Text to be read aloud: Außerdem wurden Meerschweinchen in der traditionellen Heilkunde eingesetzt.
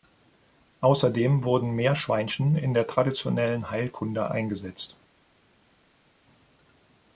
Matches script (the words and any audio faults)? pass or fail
pass